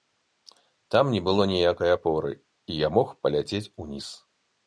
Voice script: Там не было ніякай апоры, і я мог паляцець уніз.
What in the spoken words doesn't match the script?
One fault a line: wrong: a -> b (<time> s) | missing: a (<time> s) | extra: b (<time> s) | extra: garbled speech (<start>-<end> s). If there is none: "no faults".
no faults